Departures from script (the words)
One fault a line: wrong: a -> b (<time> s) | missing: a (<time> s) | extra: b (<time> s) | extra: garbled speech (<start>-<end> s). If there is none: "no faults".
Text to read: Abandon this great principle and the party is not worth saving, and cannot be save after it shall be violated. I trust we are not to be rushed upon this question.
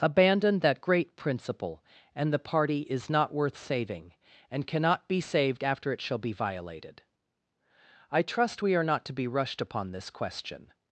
wrong: this -> that (0.6 s)
wrong: save -> saved (5.2 s)